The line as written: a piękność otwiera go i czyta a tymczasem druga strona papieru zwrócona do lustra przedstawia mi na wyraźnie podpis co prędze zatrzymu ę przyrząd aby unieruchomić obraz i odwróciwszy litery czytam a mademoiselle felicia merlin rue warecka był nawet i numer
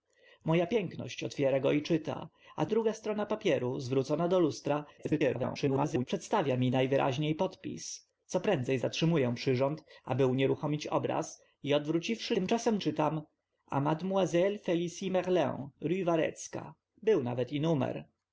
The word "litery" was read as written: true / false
false